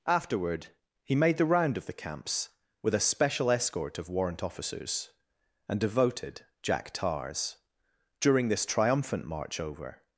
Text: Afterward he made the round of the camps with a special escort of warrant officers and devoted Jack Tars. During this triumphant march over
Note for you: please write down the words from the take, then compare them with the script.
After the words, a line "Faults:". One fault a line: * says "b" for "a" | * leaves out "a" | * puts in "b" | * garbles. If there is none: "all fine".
Afterward he made the round of the camps with a special escort of warrant officers and devoted Jack Tars. During this triumphant march over
Faults:
all fine